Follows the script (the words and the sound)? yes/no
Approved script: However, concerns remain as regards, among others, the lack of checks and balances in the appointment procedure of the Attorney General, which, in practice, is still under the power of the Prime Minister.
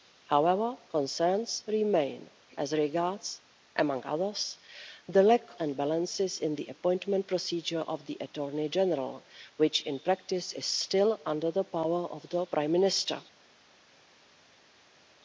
no